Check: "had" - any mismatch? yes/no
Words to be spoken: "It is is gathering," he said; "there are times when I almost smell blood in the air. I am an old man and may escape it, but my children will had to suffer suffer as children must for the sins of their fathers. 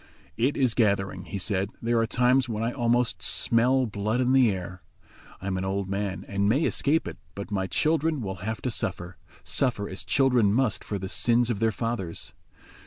yes